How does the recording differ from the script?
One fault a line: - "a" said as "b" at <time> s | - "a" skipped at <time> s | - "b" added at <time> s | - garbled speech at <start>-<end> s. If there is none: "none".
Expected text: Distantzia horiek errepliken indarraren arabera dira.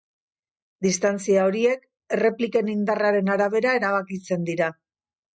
- "erabakitzen" added at 3.8 s